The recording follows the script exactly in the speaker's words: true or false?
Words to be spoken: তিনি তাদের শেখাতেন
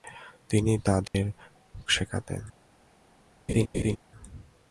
true